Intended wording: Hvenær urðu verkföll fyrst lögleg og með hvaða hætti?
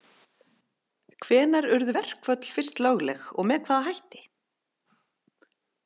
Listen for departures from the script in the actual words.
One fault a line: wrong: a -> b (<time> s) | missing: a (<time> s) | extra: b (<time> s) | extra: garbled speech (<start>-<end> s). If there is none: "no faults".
no faults